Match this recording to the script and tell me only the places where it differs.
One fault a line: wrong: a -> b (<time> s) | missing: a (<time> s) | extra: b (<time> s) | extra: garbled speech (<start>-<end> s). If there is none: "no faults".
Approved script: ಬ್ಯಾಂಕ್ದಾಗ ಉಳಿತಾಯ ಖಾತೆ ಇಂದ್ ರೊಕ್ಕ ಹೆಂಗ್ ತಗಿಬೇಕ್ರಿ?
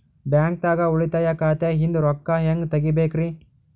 no faults